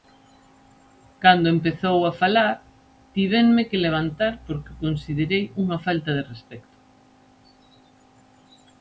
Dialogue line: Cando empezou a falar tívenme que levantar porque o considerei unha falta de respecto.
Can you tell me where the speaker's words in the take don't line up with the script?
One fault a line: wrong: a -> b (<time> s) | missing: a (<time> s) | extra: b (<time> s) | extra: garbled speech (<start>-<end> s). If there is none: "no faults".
no faults